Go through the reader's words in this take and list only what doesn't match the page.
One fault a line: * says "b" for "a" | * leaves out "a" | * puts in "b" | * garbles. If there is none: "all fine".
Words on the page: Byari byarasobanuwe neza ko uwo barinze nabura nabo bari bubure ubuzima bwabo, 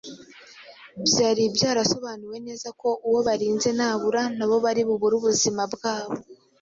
all fine